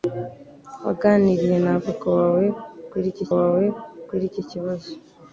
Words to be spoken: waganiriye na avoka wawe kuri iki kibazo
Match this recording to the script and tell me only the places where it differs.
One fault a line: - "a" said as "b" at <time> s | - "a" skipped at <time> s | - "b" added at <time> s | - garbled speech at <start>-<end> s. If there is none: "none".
- "wawe kuri iki" added at 3.4 s